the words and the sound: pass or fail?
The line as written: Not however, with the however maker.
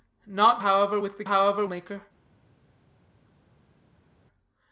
pass